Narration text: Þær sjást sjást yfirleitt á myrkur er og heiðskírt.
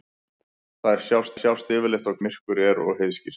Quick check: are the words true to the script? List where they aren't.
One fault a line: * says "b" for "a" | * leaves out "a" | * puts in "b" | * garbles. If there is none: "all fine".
all fine